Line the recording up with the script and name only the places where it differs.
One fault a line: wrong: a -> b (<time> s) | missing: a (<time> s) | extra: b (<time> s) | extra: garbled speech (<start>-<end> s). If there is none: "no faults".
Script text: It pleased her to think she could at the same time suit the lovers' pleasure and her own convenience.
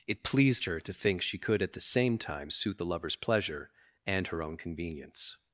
no faults